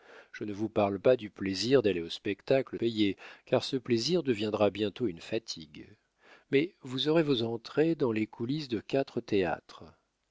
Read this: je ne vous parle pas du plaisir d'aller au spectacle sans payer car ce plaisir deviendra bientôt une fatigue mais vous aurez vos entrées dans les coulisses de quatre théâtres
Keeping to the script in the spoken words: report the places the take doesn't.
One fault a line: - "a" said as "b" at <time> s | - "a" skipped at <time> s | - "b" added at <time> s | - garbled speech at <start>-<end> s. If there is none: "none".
- "sans" skipped at 2.8 s